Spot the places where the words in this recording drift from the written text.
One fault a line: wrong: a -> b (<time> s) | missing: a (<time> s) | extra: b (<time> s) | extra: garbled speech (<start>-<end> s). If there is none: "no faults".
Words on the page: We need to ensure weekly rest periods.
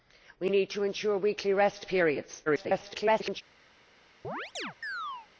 extra: garbled speech (2.5-3.4 s)